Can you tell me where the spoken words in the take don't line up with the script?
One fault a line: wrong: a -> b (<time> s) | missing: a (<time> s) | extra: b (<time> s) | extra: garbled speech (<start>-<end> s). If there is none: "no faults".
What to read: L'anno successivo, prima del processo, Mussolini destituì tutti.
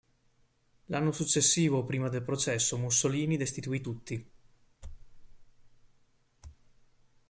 no faults